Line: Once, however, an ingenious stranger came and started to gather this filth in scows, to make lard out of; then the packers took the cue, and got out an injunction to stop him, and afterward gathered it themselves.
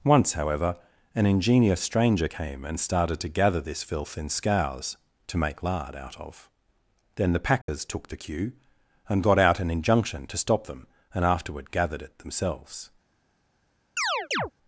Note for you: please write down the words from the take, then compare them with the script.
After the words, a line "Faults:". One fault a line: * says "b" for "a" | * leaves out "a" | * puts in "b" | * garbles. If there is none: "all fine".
Once, however, an ingenious stranger came and started to gather this filth in scows, to make lard out of; then the packers took the cue, and got out an injunction to stop them, and afterward gathered it themselves.
Faults:
* says "them" for "him"